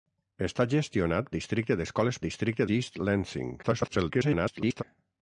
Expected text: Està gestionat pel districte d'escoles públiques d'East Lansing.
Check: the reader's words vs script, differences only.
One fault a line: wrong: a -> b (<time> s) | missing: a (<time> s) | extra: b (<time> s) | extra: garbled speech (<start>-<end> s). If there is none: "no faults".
missing: pel (1.3 s)
wrong: públiques -> districte (2.2 s)
extra: garbled speech (3.6-4.8 s)